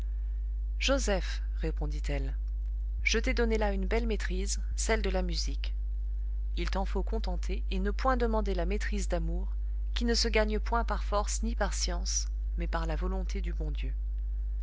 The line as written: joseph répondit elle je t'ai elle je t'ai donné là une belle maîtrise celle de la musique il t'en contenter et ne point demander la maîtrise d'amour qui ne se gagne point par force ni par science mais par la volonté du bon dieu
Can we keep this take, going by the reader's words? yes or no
no